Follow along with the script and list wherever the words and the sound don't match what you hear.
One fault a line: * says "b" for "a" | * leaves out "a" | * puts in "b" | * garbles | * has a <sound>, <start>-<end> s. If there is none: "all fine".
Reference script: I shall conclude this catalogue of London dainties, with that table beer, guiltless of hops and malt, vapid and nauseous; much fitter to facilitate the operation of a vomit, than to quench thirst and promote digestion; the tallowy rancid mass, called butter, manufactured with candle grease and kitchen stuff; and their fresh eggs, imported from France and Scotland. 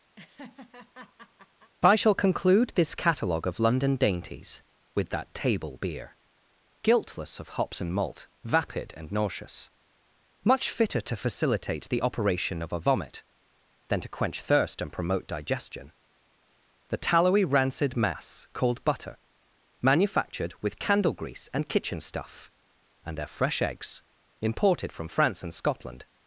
* has a laugh, 0.2-1.7 s